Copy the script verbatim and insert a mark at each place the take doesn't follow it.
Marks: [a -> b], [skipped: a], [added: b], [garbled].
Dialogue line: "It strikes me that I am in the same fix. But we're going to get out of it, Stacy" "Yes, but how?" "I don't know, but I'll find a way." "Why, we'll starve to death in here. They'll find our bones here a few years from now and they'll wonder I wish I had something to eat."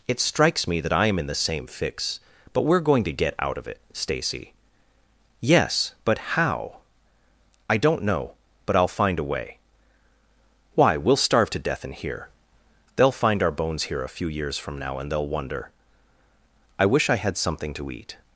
"It strikes me that I am in the same fix. But we're going to get out of it, Stacy" "Yes, but how?" "I don't know, but I'll find a way." "Why, we'll starve to death in here. They'll find our bones here a few years from now and they'll wonder I wish I had something to eat."